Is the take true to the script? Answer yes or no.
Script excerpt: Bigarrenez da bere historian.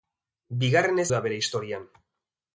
yes